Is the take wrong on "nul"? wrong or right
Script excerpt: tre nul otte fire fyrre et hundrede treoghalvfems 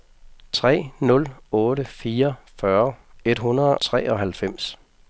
right